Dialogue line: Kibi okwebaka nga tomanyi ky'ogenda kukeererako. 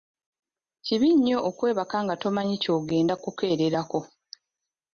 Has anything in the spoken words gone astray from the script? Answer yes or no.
yes